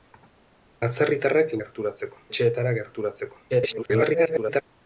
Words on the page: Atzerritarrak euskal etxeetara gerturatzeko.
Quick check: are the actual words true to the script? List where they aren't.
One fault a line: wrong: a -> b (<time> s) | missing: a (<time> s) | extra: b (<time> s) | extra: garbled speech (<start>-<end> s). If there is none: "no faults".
wrong: euskal -> gerturatzeko (1.6 s)
extra: garbled speech (3.5-4.6 s)